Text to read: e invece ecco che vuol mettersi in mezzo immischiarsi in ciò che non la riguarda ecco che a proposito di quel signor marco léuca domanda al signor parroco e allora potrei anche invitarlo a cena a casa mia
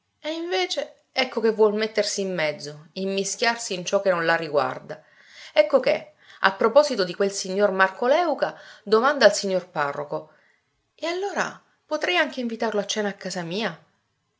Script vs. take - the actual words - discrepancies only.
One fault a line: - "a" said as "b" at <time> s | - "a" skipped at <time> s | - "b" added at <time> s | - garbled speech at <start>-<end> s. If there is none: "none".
none